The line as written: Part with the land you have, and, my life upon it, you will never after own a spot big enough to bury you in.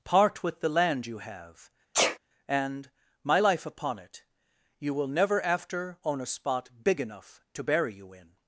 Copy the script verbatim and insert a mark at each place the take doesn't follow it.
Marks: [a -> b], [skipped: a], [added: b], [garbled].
Part with the land you have, and, my life upon it, you will never after own a spot big enough to bury you in.